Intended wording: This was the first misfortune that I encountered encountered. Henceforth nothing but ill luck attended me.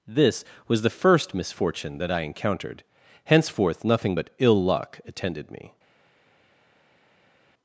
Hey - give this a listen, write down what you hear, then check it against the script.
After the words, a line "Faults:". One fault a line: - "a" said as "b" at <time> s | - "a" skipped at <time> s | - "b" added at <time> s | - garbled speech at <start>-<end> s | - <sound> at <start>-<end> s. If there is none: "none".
This was the first misfortune that I encountered. Henceforth nothing but ill luck attended me.
Faults:
- "encountered" skipped at 2.8 s